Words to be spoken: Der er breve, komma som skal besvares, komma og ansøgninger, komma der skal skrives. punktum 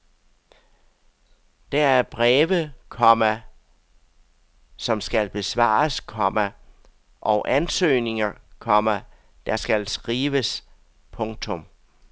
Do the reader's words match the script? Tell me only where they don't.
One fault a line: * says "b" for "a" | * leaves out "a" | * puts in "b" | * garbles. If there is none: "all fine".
all fine